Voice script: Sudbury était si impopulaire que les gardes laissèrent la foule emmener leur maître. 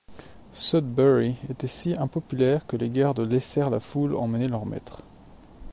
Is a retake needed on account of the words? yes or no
no